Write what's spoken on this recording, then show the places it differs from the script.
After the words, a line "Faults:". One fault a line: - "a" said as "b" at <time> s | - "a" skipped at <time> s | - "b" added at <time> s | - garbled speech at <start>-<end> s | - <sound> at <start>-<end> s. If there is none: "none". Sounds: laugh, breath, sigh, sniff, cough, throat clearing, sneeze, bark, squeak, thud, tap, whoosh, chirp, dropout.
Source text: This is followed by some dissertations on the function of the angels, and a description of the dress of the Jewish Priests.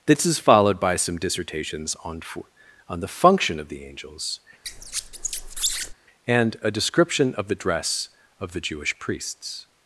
This is followed by some dissertations on on the function of the angels, and a description of the dress of the Jewish Priests.
Faults:
- "on" added at 2.9 s
- squeak at 4.6-5.9 s